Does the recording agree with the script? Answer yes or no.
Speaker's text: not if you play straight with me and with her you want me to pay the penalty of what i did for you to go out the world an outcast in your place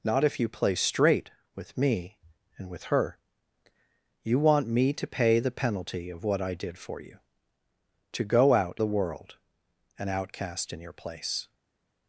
yes